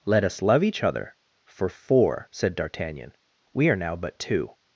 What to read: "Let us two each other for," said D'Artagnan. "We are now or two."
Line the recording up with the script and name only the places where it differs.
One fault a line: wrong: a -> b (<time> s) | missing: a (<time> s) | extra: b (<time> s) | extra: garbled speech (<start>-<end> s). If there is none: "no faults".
wrong: two -> love (0.4 s)
extra: four (1.7 s)
wrong: or -> but (4.0 s)